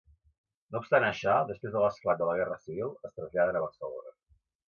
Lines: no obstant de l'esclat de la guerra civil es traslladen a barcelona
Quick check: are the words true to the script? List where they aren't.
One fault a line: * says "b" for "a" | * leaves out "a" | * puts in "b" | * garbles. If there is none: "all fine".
* puts in "això després"